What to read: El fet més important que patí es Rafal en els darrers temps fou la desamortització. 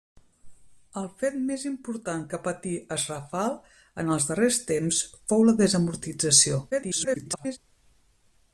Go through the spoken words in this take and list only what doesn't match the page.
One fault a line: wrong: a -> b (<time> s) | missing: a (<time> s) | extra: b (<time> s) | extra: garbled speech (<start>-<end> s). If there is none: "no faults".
extra: garbled speech (6.7-7.6 s)